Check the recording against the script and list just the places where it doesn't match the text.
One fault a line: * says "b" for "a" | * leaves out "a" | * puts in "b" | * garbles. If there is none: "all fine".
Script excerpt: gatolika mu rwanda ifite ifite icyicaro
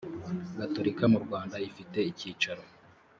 * leaves out "ifite"